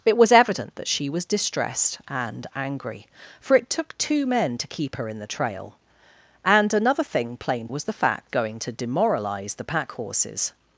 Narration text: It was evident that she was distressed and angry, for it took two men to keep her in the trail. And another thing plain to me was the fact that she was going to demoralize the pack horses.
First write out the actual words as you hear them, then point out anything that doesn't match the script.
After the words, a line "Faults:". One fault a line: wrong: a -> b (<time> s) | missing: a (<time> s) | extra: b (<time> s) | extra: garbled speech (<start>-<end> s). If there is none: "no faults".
It was evident that she was distressed and angry, for it took two men to keep her in the trail. And another thing plain was the fact going to demoralize the pack horses.
Faults:
missing: to me (7.7 s)
missing: that she was (8.3 s)